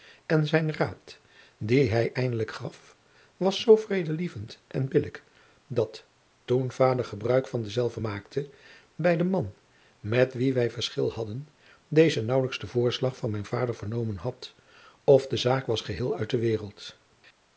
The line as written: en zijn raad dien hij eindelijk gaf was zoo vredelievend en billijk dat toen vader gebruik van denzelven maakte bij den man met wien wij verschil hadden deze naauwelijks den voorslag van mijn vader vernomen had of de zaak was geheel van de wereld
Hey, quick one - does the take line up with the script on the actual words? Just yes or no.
no